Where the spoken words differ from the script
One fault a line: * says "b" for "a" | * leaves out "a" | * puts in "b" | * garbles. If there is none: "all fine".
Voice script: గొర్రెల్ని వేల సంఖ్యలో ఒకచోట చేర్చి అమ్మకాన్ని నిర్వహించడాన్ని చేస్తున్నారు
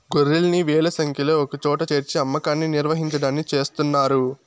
all fine